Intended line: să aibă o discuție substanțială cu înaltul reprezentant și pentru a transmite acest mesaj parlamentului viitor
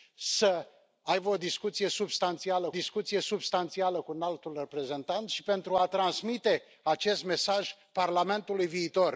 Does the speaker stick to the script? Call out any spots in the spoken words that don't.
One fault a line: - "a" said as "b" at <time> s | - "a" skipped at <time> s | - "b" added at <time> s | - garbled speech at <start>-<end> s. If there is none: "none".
- "discuție substanțială" added at 2.7 s